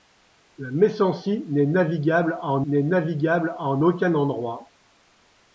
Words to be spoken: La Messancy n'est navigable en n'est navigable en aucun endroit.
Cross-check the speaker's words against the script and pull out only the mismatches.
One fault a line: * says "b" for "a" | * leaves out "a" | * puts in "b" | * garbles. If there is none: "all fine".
all fine